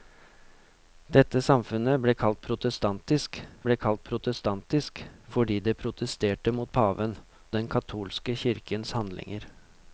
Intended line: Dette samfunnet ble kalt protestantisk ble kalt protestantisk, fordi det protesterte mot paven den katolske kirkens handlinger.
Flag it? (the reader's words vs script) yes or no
no